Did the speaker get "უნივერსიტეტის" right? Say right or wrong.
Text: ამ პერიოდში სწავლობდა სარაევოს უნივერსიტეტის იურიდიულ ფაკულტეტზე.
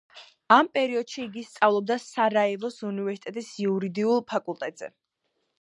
right